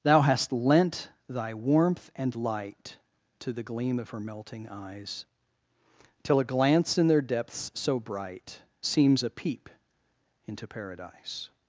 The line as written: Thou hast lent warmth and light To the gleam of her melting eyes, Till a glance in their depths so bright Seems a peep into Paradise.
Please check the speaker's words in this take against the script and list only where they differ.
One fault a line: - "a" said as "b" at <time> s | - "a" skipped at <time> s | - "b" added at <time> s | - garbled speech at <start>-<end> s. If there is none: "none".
- "thy" added at 1.3 s